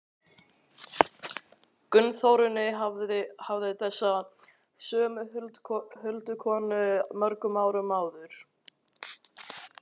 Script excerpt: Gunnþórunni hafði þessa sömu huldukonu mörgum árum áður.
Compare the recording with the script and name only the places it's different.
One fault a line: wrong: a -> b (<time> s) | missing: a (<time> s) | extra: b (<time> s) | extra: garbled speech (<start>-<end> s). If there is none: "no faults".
no faults